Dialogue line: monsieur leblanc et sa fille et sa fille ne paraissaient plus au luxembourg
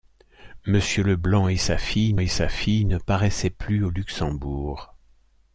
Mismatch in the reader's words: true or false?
false